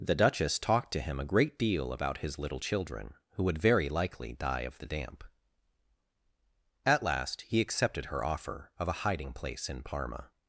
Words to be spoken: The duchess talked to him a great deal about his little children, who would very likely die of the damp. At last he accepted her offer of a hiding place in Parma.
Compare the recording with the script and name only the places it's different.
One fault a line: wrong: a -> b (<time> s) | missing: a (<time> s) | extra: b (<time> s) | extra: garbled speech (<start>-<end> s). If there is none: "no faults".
no faults